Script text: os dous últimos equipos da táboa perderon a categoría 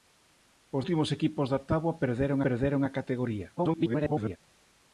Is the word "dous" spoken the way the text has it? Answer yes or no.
no